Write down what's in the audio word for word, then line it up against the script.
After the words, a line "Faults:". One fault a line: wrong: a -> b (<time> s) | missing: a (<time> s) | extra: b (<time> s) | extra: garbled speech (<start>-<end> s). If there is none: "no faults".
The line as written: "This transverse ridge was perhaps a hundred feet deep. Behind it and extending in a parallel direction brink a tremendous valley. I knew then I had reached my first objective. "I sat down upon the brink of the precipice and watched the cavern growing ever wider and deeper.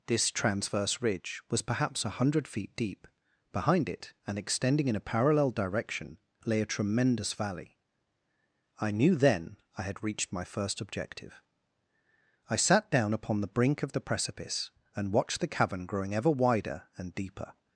"This transverse ridge was perhaps a hundred feet deep. Behind it and extending in a parallel direction lay a tremendous valley. I knew then I had reached my first objective. "I sat down upon the brink of the precipice and watched the cavern growing ever wider and deeper.
Faults:
wrong: brink -> lay (6.5 s)